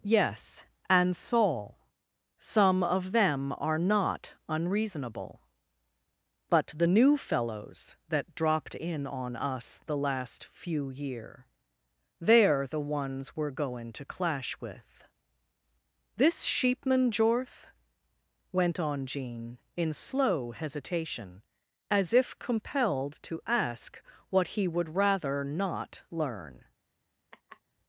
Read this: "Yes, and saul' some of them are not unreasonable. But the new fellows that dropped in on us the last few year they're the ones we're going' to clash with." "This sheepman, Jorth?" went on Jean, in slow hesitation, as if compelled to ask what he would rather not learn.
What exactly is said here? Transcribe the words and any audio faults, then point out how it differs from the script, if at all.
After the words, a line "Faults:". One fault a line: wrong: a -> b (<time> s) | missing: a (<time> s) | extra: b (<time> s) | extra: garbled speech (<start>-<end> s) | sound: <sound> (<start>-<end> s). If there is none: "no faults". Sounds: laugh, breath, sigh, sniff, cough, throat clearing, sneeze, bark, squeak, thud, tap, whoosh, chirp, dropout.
"Yes, and saul' some of them are not unreasonable. But the new fellows that dropped in on us the last few year they're the ones we're going' to clash with." "This sheepman, Jorth?" went on Jean, in slow hesitation, as if compelled to ask what he would rather not learn.
Faults:
sound: laugh (27.3-27.6 s)